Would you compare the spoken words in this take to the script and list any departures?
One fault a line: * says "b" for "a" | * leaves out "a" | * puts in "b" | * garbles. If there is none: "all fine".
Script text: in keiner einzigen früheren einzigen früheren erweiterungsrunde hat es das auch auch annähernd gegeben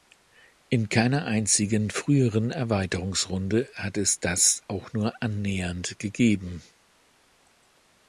* leaves out "einzigen früheren"
* says "nur" for "auch"